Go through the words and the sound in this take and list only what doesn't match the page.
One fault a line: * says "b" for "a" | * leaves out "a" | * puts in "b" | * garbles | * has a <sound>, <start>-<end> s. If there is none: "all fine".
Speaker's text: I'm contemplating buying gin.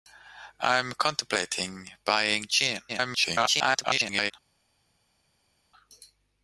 * garbles